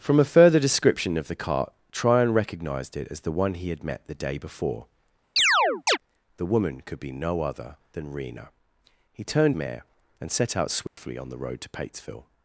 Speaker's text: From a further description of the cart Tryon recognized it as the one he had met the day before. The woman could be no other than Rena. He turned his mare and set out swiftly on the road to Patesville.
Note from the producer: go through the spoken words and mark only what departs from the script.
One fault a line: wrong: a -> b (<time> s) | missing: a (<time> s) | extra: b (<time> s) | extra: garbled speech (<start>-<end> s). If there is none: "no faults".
missing: his (9.5 s)